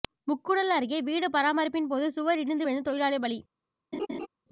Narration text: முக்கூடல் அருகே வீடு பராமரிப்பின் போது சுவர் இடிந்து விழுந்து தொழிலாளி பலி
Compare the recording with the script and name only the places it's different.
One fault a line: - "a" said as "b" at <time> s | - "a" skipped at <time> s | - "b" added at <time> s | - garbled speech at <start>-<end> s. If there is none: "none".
none